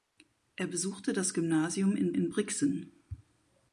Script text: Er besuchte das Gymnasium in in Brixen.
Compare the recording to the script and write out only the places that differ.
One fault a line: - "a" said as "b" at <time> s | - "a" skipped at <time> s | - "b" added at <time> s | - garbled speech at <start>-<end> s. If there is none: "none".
none